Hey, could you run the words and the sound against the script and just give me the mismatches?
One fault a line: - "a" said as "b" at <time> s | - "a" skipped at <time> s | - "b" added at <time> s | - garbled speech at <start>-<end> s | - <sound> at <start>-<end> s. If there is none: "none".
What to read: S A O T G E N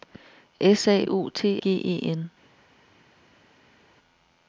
none